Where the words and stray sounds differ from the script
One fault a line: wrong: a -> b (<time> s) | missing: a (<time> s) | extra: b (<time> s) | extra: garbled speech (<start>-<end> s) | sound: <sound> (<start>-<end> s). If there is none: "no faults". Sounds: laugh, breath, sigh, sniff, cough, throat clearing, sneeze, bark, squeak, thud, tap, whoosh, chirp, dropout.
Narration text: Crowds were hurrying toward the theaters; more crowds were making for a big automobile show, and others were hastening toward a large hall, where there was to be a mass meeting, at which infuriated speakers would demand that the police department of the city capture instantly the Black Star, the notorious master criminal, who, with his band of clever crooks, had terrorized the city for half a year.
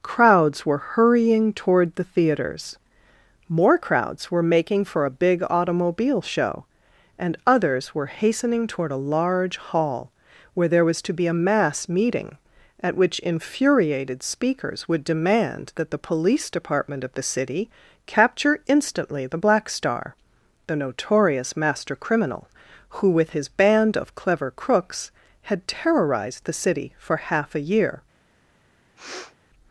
sound: sniff (29.0-29.4 s)